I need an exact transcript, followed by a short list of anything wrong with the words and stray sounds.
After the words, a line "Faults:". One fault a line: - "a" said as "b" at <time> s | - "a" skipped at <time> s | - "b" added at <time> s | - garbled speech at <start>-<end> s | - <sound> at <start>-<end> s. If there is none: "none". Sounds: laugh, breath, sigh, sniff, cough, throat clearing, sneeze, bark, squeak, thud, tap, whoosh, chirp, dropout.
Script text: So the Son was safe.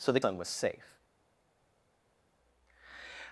So the Son was safe.
Faults:
none